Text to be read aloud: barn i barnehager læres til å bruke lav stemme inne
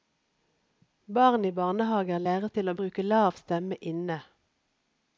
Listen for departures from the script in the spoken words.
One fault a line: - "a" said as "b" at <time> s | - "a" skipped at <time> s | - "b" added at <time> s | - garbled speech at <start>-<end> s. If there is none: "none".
none